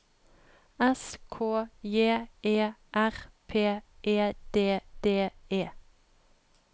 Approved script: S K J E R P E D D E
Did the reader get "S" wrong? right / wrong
right